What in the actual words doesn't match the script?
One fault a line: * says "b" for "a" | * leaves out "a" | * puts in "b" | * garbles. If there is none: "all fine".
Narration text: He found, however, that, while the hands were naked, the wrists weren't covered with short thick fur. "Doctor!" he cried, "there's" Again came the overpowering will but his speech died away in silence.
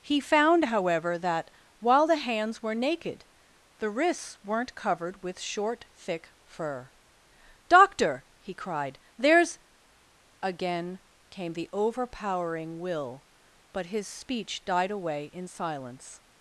all fine